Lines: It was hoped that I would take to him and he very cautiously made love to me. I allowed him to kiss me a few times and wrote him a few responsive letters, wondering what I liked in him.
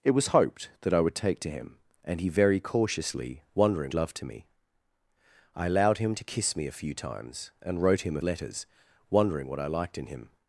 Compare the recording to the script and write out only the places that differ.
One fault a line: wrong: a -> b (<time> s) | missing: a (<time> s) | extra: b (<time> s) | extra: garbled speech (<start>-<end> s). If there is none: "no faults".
wrong: made -> wondering (3.5 s)
missing: few responsive (8.2 s)